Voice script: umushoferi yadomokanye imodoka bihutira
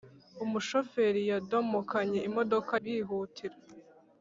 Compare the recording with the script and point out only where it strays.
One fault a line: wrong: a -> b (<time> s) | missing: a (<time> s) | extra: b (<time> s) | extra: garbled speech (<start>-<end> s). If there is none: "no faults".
no faults